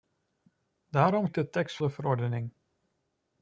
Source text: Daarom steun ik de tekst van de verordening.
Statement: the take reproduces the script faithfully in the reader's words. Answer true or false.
false